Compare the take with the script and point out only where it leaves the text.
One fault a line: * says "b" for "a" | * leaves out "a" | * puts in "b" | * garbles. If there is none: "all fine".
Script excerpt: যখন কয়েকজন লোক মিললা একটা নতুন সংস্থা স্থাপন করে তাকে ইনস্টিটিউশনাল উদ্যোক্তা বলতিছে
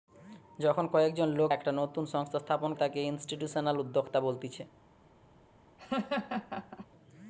* leaves out "মিললা"
* leaves out "করে"